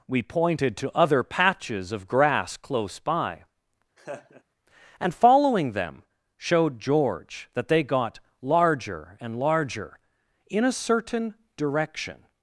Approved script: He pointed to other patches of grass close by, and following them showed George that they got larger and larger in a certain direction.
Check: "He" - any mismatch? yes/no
yes